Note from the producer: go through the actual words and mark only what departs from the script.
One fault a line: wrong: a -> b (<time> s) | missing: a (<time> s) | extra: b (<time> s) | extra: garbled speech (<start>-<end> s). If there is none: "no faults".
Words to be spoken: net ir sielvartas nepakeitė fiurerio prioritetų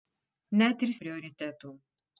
missing: sielvartas nepakeitė fiurerio (0.9 s)